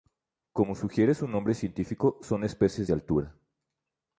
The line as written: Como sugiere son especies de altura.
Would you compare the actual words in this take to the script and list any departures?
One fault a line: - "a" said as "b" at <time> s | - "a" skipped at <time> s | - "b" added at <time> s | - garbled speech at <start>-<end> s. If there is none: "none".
- "su nombre científico" added at 1.1 s